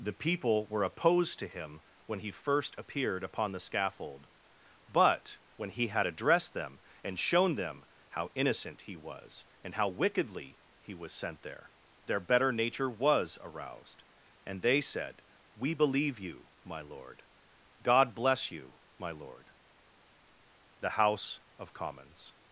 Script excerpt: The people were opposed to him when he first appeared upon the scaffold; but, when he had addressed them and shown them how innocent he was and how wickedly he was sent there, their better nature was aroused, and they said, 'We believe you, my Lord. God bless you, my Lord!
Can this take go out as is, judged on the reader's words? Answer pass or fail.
fail